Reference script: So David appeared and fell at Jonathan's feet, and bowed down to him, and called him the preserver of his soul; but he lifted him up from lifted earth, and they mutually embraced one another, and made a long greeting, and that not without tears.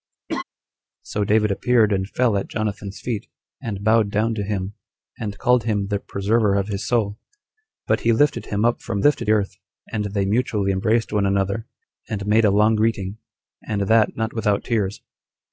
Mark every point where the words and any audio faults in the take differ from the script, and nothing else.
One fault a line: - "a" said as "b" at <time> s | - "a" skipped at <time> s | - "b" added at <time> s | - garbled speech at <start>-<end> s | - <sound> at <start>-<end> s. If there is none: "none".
- laugh at 0.3-0.4 s